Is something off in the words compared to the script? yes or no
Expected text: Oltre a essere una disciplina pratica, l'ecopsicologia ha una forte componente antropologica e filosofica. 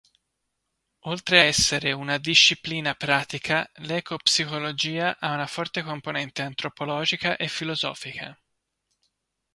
yes